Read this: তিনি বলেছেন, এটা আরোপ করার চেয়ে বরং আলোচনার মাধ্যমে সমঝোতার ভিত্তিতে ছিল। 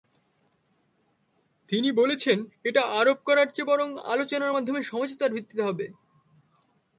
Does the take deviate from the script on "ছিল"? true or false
true